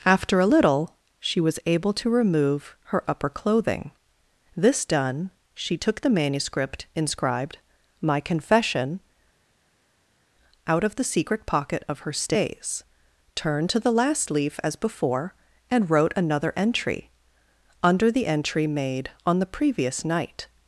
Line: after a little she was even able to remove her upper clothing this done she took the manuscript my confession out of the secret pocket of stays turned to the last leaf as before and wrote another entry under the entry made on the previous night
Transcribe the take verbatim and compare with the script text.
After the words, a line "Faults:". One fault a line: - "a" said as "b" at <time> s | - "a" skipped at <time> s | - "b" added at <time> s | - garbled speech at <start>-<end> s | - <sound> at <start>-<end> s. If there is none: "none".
after a little she was able to remove her upper clothing this done she took the manuscript inscribed my confession out of the secret pocket of her stays turned to the last leaf as before and wrote another entry under the entry made on the previous night
Faults:
- "even" skipped at 1.6 s
- "inscribed" added at 6.9 s
- "her" added at 12.0 s